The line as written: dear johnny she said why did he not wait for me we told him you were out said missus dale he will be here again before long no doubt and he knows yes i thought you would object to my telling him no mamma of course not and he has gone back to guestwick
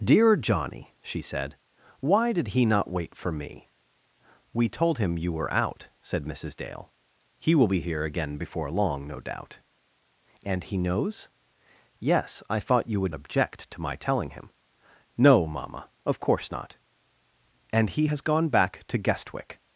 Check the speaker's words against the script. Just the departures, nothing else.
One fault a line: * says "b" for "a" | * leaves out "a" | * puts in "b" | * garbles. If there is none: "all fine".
all fine